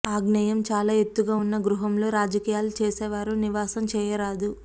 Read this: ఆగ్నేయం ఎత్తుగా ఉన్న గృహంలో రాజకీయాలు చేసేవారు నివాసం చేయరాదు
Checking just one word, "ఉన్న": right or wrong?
right